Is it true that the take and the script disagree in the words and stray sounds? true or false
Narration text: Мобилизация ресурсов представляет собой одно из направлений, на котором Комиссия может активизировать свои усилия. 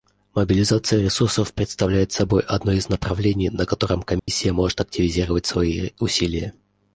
true